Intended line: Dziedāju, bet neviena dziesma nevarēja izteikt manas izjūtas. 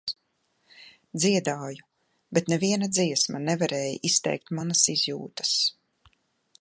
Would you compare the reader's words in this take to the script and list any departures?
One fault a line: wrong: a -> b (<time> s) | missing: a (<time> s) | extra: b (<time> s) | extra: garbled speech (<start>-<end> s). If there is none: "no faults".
no faults